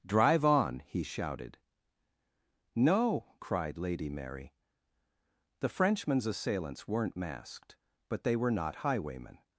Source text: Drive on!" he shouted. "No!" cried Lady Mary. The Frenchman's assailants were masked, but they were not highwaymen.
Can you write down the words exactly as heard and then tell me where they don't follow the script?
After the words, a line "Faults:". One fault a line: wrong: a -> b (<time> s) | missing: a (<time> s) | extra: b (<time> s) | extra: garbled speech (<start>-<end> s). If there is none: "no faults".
Drive on!" he shouted. "No!" cried Lady Mary. The Frenchman's assailants weren't masked, but they were not highwaymen.
Faults:
wrong: were -> weren't (6.9 s)